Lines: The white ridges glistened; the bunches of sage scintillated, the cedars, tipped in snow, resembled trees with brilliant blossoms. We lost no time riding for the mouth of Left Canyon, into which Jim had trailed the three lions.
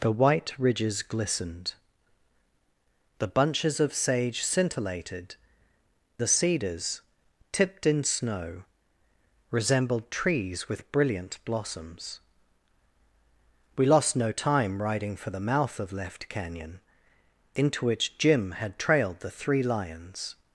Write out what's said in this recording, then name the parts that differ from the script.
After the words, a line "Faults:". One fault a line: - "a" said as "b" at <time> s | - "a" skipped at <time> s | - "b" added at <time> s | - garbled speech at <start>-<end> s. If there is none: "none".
The white ridges glistened; the bunches of sage scintillated, the cedars, tipped in snow, resembled trees with brilliant blossoms. We lost no time riding for the mouth of Left Canyon, into which Jim had trailed the three lions.
Faults:
none